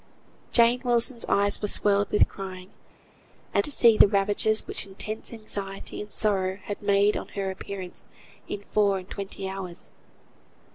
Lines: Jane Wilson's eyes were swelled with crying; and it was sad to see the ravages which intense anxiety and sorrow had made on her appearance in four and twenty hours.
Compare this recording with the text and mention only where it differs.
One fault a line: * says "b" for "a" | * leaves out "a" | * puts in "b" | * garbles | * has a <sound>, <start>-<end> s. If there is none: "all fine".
* leaves out "it was sad"